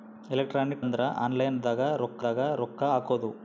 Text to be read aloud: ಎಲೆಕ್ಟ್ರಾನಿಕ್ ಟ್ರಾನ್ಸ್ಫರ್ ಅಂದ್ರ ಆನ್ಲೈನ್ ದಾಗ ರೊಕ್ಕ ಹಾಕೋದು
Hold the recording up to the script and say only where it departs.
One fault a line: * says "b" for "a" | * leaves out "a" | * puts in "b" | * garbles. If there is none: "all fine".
* leaves out "ಟ್ರಾನ್ಸ್ಫರ್"
* puts in "ದಾಗ ರೊಕ್ಕ"